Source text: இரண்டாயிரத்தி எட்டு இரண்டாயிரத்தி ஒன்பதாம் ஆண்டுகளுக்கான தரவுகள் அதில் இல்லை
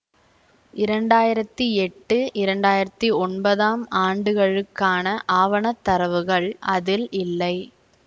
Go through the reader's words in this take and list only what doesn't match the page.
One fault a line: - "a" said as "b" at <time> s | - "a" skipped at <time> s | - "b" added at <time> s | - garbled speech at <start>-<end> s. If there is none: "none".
- "ஆவண" added at 5.4 s